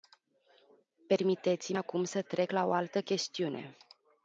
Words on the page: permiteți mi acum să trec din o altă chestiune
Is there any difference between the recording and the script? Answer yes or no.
yes